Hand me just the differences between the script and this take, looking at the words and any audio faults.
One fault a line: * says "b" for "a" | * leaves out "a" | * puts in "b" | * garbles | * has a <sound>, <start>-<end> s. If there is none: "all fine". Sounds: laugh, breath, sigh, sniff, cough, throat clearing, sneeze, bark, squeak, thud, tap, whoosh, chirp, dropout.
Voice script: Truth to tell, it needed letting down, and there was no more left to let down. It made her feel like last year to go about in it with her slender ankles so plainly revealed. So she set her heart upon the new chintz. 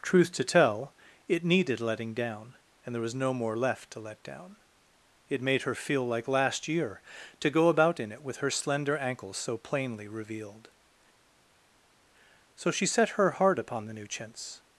all fine